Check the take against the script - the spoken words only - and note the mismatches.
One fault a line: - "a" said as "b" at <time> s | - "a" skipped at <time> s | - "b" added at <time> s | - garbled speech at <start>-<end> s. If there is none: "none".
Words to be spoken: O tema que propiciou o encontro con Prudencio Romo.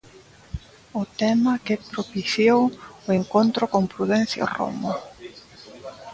none